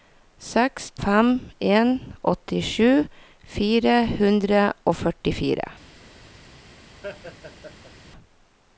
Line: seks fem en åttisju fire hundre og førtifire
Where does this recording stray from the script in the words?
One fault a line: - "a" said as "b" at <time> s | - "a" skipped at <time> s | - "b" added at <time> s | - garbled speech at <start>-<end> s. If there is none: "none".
none